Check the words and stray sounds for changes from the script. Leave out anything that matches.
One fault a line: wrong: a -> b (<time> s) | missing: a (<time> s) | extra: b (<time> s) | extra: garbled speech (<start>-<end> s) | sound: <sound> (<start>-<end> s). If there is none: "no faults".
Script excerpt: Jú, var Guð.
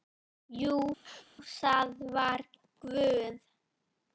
sound: sneeze (1.0-1.3 s)
extra: það (1.6 s)